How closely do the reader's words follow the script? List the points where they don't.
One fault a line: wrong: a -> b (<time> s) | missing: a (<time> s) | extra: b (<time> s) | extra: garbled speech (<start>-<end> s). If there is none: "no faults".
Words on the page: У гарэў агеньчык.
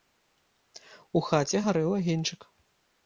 extra: хаце (1.3 s)